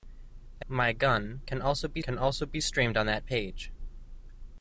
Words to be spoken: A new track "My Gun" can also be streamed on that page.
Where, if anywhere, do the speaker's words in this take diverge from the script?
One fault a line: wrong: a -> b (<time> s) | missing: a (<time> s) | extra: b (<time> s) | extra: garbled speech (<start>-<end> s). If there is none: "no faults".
wrong: new track My Gun -> My Gun can also be (0.7 s)